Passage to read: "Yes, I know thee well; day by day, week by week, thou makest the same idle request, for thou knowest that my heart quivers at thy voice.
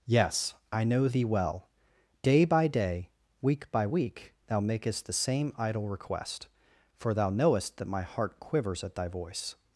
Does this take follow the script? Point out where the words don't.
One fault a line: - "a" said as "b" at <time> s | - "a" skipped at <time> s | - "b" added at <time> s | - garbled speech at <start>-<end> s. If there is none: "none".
none